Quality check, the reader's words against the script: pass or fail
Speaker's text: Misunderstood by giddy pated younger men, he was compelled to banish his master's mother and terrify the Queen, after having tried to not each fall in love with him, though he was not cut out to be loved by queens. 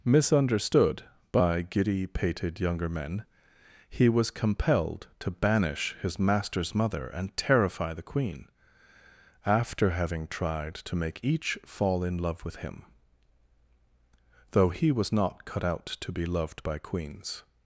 fail